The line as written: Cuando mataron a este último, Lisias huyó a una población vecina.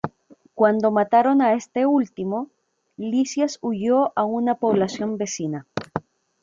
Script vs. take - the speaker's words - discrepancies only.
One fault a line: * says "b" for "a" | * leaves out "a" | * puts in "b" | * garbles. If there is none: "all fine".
all fine